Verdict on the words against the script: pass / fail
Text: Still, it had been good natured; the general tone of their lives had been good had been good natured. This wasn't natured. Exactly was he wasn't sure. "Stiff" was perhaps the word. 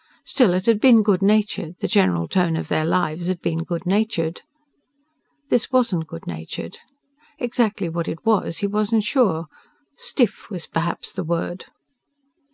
fail